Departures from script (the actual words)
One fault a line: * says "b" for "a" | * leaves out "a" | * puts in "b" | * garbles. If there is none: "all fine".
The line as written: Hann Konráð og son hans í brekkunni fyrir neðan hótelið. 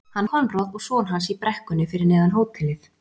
all fine